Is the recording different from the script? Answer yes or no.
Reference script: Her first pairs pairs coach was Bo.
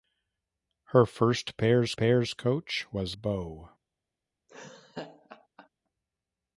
no